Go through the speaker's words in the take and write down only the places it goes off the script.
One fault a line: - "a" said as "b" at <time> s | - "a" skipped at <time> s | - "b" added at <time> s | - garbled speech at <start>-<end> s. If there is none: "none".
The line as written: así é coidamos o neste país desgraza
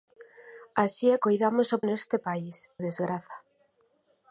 none